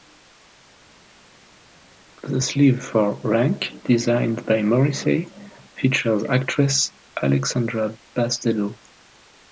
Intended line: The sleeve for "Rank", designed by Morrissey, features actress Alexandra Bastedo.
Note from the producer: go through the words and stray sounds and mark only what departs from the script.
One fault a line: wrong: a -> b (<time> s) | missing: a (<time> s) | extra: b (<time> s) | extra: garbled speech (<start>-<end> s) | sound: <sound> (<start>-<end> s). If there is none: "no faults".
no faults